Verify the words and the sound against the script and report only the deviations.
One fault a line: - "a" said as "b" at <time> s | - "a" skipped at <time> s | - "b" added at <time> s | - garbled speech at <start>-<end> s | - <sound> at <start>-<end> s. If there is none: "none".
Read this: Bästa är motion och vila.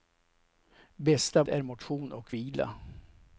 none